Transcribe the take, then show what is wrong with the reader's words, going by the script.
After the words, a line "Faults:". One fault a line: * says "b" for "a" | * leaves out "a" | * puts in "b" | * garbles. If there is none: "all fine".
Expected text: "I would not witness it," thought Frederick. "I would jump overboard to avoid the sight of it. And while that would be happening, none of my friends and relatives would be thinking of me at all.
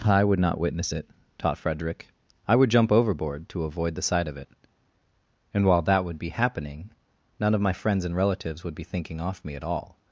"I would not witness it," taught Frederick. "I would jump overboard to avoid the sight of it. And while that would be happening, none of my friends and relatives would be thinking off me at all.
Faults:
* says "taught" for "thought"
* says "off" for "of"